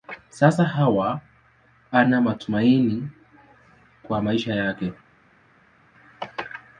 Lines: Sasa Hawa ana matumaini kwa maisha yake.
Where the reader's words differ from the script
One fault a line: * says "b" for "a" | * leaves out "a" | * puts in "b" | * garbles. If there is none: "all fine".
all fine